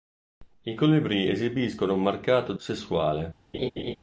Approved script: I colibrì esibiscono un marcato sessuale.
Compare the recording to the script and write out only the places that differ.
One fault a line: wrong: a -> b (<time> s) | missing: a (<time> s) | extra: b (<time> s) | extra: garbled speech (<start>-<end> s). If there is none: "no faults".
no faults